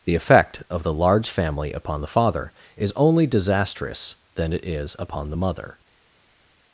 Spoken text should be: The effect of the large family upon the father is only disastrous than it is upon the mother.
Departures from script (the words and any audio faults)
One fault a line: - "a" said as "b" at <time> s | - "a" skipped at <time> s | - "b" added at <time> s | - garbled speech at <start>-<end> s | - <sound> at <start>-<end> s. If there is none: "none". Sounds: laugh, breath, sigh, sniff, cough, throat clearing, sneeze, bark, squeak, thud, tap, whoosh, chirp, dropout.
none